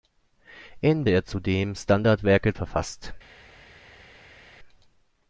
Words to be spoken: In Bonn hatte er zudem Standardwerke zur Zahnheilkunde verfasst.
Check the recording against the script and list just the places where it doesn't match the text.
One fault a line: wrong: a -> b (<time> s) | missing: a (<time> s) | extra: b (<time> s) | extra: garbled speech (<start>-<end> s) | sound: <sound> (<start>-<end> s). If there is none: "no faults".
missing: Bonn hatte (1.1 s)
missing: zur Zahnheilkunde (2.5 s)